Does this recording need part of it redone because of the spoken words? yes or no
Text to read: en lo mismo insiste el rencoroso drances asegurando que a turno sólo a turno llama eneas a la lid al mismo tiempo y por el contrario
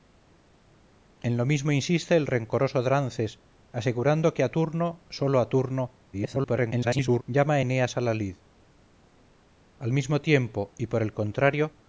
yes